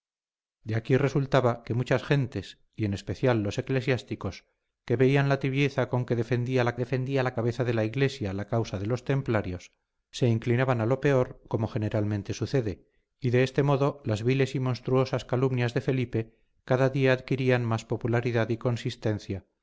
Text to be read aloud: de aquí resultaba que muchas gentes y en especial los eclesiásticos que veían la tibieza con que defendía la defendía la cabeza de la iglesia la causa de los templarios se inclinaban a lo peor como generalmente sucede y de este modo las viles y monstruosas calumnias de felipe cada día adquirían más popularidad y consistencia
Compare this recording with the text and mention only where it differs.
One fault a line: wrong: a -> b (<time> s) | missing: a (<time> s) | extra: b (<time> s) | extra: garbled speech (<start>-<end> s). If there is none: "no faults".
no faults